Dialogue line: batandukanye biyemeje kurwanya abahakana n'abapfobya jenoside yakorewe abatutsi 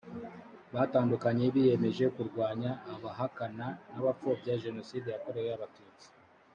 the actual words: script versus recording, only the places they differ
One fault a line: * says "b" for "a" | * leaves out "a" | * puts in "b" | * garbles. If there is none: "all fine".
all fine